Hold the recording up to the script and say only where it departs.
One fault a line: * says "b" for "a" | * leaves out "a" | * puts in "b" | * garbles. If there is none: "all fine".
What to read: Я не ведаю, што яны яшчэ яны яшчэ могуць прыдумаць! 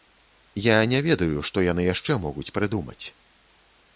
* leaves out "яны яшчэ"